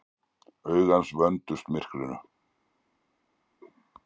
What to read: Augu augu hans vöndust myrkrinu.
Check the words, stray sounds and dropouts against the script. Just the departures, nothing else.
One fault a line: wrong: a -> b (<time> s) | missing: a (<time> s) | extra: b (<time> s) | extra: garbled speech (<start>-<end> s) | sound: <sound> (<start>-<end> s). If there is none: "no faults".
missing: augu (0.9 s)